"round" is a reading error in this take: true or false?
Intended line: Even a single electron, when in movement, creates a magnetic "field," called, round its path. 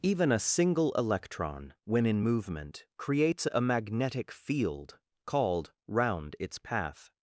false